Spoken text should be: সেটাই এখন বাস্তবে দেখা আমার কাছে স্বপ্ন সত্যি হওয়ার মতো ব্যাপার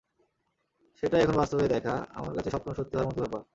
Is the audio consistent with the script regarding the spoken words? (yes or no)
yes